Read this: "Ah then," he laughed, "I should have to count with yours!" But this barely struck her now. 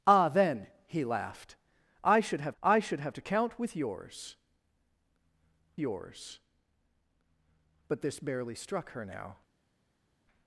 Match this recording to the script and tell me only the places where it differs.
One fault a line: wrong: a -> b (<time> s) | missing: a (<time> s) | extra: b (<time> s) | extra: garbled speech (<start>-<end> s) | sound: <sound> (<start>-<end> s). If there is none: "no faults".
extra: I should have (2.6 s)
extra: yours (5.8 s)